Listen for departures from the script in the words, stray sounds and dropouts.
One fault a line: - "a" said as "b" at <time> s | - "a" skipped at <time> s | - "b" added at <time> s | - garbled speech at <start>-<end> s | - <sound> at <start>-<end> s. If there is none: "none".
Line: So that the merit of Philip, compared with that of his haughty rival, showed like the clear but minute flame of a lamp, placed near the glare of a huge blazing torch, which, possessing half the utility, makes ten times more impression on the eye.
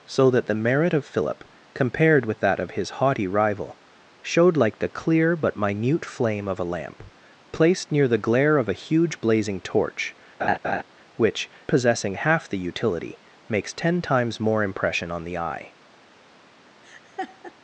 - laugh at 10.4-10.8 s
- laugh at 16.8-17.5 s